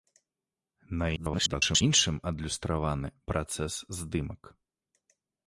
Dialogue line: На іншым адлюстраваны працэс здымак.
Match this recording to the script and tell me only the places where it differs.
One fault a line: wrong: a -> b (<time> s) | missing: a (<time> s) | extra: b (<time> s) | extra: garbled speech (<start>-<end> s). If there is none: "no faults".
extra: garbled speech (1.2-1.8 s)